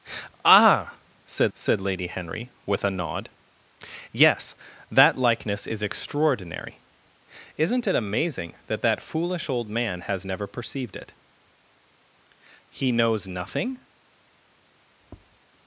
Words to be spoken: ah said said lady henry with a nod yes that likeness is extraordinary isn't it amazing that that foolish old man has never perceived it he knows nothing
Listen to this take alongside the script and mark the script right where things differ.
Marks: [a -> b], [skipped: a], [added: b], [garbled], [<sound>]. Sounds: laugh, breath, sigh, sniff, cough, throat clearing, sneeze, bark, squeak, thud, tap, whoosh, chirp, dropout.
ah said said lady henry with a nod yes that likeness is extraordinary isn't it amazing that that foolish old man has never perceived it he knows nothing [tap]